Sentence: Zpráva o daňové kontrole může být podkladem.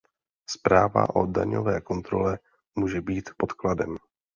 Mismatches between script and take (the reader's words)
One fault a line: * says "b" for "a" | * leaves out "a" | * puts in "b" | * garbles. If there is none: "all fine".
all fine